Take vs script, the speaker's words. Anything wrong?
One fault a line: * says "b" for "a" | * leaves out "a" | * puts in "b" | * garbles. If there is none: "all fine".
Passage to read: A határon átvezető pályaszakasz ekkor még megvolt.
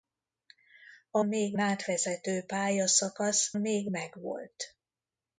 * says "még" for "határon"
* leaves out "ekkor"